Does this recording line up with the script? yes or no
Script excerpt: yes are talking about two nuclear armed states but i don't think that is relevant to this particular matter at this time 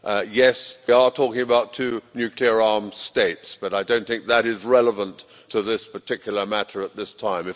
yes